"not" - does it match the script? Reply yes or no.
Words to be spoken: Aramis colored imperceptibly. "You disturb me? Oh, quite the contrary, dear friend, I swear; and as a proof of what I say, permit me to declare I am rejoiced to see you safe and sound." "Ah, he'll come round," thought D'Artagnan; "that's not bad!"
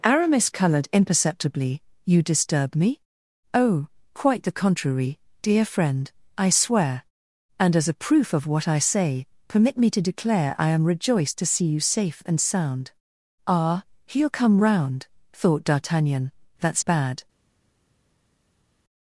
no